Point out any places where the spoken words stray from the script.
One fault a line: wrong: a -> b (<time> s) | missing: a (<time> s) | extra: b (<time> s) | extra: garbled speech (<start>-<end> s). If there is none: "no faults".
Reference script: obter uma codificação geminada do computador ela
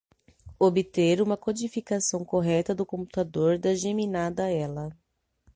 wrong: geminada -> correta (2.2 s)
extra: da geminada (3.6 s)